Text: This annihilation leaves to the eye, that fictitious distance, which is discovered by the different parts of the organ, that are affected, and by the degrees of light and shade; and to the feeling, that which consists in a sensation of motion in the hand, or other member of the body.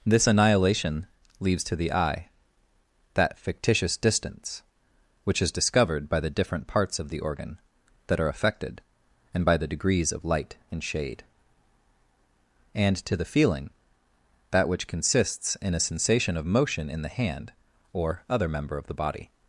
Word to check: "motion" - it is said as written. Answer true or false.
true